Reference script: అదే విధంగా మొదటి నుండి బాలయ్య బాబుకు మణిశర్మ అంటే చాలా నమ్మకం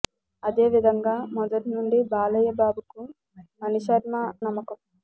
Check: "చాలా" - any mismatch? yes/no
yes